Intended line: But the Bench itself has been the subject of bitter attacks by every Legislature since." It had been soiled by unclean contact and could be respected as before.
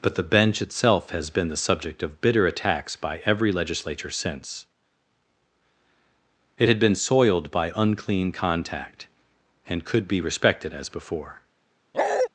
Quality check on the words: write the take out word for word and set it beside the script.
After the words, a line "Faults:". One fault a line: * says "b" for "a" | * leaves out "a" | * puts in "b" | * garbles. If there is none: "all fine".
But the Bench itself has been the subject of bitter attacks by every Legislature since." It had been soiled by unclean contact and could be respected as before.
Faults:
all fine